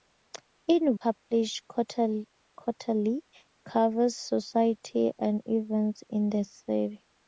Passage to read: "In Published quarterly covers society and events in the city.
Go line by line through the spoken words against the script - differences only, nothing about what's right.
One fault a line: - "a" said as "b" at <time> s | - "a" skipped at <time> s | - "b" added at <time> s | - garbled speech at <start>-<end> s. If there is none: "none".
none